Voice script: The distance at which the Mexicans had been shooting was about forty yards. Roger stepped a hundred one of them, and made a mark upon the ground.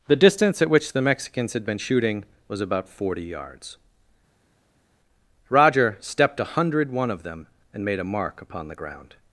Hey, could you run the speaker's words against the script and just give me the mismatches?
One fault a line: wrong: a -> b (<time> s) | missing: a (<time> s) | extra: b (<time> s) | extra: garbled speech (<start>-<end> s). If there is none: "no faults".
no faults